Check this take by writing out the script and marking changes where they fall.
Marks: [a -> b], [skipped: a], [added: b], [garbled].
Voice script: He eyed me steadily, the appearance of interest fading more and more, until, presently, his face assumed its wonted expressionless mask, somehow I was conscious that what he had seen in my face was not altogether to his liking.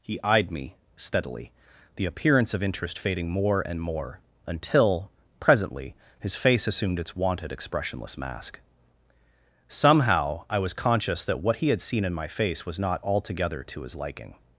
He eyed me steadily, the appearance of interest fading more and more, until, presently, his face assumed its wonted expressionless mask, somehow I was conscious that what he had seen in my face was not altogether to his liking.